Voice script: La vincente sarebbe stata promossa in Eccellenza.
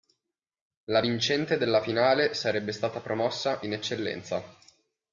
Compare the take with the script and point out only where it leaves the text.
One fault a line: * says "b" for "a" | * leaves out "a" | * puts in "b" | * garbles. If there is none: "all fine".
* puts in "della finale"